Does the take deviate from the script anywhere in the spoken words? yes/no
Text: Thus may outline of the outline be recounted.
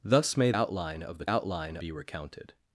no